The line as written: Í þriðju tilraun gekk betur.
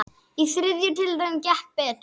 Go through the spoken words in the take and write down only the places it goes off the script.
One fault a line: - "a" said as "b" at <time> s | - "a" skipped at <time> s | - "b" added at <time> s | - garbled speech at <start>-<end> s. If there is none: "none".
none